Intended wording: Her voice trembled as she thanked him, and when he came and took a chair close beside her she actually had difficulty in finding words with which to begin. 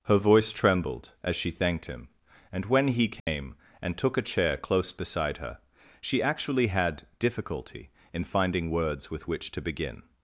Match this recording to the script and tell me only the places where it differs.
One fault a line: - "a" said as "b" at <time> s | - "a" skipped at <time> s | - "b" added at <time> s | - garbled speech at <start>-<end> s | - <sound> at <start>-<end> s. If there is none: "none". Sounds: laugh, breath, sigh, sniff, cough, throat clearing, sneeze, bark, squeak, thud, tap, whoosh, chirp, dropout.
- dropout at 3.2-3.3 s